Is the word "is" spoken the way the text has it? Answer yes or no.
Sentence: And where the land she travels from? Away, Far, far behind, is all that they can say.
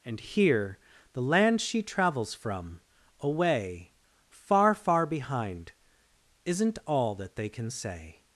no